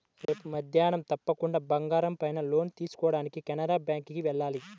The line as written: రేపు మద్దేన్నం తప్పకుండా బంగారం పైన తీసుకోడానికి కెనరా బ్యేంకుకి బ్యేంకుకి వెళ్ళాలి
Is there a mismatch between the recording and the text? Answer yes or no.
yes